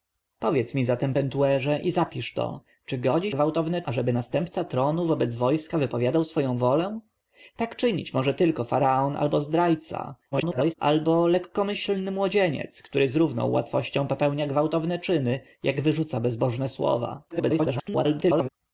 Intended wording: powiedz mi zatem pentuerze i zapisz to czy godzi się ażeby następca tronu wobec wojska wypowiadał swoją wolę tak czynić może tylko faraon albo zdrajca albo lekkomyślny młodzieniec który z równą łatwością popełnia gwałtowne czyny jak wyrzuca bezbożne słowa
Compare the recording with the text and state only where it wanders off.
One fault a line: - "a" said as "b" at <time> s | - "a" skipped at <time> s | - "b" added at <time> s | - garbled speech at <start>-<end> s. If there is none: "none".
- "się" said as "gwałtowne" at 3.3 s
- garbled speech at 10.3-10.7 s
- garbled speech at 17.3-18.5 s